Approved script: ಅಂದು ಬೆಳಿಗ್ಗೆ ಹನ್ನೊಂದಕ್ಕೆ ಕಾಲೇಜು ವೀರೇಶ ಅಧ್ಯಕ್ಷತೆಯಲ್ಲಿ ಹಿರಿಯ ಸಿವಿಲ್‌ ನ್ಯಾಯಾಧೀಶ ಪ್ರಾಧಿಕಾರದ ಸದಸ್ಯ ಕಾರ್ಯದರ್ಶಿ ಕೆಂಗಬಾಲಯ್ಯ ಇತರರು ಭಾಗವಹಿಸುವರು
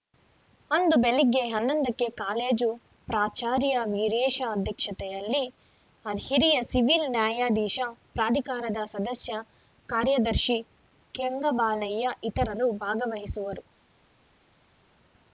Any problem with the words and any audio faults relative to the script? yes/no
yes